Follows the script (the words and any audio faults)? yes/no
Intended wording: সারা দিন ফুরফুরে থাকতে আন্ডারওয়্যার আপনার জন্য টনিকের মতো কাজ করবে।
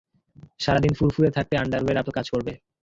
no